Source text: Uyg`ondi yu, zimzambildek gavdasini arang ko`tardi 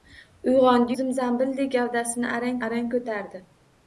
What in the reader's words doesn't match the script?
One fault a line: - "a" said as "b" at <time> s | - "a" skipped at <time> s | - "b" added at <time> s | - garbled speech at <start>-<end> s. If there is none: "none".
- "yu" skipped at 0.9 s
- "arang" added at 2.7 s